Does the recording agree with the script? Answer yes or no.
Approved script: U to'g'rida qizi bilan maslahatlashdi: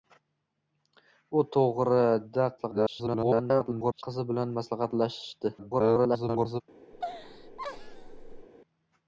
no